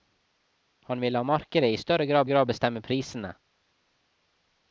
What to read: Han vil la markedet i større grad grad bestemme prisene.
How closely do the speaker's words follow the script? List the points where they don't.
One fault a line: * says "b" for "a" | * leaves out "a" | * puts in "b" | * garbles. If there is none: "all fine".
all fine